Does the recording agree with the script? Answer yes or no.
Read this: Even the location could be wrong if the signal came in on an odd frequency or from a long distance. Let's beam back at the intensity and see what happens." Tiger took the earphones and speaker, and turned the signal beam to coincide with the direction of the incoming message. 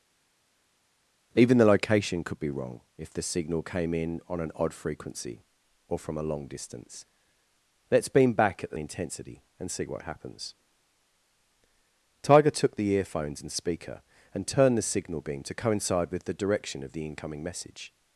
yes